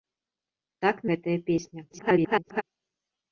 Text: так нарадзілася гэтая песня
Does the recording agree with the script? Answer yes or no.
no